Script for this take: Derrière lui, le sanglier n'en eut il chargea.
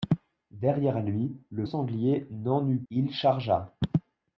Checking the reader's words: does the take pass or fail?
pass